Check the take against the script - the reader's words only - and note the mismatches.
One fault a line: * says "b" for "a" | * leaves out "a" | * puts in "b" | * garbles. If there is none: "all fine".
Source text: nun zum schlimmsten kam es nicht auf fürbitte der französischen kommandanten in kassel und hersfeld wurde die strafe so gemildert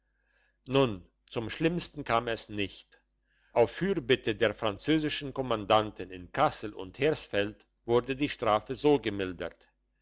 all fine